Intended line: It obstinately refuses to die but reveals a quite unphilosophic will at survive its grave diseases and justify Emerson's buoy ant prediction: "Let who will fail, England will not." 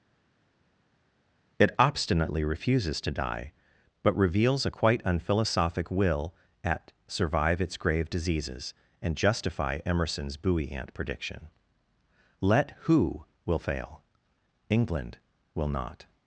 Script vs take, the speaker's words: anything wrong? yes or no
no